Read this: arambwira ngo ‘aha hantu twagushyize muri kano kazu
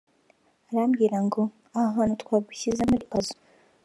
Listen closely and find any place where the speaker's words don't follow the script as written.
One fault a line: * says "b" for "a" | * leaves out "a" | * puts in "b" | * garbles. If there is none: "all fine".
* leaves out "kano"